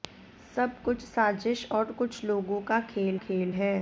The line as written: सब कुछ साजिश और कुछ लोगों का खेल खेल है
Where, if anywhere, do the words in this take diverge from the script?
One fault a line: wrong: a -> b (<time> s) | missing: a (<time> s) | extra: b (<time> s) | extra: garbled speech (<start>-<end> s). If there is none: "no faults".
no faults